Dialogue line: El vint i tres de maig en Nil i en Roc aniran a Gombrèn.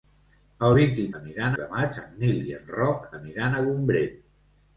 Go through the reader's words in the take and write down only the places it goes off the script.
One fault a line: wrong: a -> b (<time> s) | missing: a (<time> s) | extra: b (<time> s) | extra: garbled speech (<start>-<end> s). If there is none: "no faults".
wrong: tres -> aniran (1.2 s)